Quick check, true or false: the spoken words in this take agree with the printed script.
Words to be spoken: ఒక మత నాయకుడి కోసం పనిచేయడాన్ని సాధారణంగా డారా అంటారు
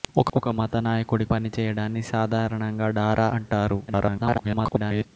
false